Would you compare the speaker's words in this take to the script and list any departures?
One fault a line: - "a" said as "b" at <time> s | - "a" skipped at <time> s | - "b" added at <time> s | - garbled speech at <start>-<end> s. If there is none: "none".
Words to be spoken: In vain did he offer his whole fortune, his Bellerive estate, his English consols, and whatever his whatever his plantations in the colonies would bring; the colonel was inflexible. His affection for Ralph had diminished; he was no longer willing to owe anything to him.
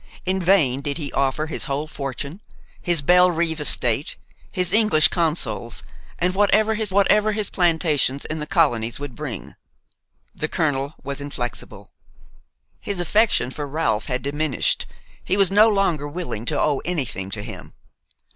none